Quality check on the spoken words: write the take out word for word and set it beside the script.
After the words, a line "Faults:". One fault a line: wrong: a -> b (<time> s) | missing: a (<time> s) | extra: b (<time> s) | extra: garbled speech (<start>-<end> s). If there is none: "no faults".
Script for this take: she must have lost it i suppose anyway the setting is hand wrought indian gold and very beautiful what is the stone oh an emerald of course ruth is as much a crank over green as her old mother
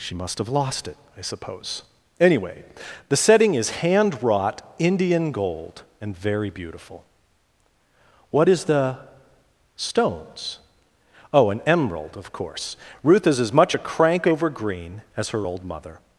she must have lost it i suppose anyway the setting is hand wrought indian gold and very beautiful what is the stones oh an emerald of course ruth is as much a crank over green as her old mother
Faults:
wrong: stone -> stones (9.8 s)